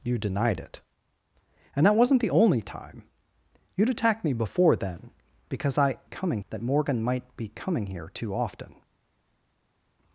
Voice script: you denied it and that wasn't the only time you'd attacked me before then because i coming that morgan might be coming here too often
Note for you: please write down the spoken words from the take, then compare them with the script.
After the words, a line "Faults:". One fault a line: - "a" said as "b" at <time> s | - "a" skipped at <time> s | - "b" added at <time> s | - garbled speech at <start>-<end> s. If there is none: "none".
you denied it and that wasn't the only time you'd attacked me before then because i coming that morgan might be coming here too often
Faults:
none